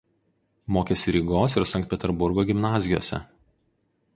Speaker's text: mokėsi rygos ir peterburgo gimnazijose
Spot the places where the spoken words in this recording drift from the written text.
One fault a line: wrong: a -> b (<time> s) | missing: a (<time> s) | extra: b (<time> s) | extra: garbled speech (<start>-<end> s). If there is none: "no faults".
extra: sankt (1.7 s)